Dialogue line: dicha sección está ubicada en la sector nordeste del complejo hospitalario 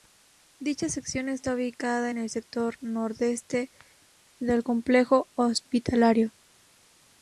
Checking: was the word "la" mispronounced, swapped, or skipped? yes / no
yes